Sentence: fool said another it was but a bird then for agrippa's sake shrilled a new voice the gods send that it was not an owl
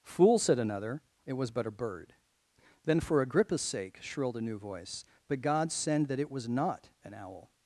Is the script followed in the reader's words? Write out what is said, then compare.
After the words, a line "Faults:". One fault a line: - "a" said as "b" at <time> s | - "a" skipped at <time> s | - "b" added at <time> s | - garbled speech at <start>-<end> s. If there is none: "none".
fool said another it was but a bird then for agrippa's sake shrilled a new voice but god send that it was not an owl
Faults:
- "the gods" said as "but god" at 5.3 s